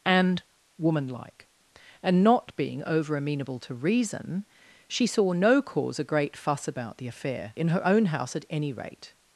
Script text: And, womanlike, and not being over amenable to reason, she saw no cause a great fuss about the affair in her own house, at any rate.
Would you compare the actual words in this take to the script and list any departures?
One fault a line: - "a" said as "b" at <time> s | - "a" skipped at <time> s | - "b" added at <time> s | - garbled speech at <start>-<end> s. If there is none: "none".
none